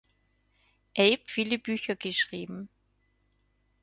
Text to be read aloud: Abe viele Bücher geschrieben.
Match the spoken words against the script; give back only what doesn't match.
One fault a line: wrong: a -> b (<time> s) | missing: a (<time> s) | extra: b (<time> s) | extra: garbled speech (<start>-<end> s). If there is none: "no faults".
no faults